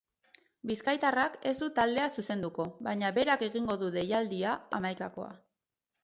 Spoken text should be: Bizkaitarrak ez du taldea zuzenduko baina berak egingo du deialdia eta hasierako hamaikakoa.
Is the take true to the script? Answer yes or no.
no